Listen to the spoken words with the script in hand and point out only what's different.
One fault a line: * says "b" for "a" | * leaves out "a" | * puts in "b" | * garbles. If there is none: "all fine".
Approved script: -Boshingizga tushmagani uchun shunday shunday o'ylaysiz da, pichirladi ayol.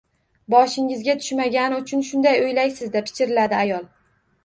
* leaves out "shunday"